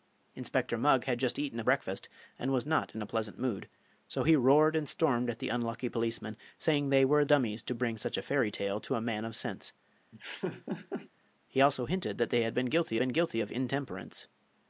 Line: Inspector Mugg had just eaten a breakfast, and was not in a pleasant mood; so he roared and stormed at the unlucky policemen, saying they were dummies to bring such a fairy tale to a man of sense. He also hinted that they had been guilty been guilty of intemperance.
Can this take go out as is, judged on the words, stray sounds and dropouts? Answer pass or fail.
fail